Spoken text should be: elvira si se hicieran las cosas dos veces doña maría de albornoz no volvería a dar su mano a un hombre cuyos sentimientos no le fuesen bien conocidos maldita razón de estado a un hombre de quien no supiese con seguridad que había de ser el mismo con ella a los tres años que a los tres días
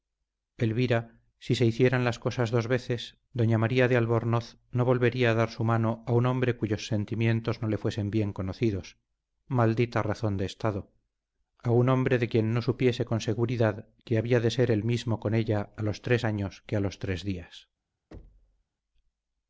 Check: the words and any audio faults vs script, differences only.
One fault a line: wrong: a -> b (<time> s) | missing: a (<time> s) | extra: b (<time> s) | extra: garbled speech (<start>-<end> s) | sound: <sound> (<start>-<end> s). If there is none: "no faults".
sound: thud (18.1-18.6 s)